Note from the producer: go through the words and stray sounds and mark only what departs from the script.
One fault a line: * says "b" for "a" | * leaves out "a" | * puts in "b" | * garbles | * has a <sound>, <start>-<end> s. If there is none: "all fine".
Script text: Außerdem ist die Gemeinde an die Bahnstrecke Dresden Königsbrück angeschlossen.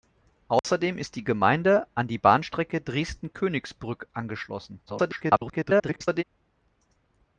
* has a dropout, 0.6-0.6 s
* garbles